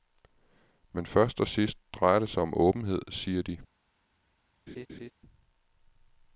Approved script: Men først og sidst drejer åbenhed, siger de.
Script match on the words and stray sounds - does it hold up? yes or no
no